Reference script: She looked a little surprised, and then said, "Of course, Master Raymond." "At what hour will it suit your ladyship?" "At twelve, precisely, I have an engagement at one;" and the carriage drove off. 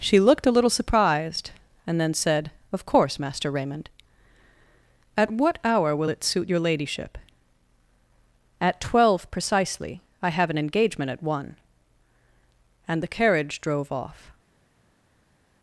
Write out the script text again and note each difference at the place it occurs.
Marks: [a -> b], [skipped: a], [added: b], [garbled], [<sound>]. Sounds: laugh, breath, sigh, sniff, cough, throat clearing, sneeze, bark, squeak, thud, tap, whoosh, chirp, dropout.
She looked a little surprised, and then said, "Of course, Master Raymond." "At what hour will it suit your ladyship?" "At twelve, precisely, I have an engagement at one;" and the carriage drove off.